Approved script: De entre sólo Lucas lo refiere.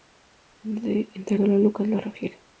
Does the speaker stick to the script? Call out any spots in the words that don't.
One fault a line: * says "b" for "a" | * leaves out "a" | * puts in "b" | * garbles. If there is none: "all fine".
all fine